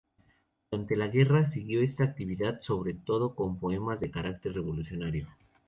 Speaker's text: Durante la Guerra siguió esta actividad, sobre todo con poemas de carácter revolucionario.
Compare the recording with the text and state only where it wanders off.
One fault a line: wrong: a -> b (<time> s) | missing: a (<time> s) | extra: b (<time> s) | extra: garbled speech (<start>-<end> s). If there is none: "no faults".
no faults